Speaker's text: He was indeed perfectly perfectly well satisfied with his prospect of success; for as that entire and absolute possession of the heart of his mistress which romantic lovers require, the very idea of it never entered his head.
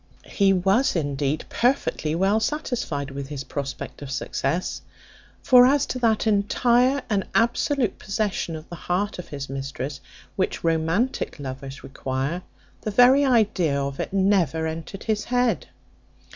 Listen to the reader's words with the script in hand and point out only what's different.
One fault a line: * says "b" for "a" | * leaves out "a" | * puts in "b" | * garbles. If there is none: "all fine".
* leaves out "perfectly"
* puts in "to"